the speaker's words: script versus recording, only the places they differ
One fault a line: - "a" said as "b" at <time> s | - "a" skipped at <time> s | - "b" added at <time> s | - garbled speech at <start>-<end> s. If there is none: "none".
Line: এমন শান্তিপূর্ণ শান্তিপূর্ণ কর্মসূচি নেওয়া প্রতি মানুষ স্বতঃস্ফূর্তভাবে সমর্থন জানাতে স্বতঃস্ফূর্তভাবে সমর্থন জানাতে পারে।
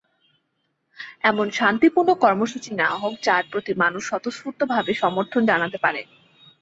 - "শান্তিপূর্ণ" skipped at 2.1 s
- "হোক যার" added at 3.0 s
- "স্বতঃস্ফূর্তভাবে সমর্থন জানাতে" skipped at 5.8 s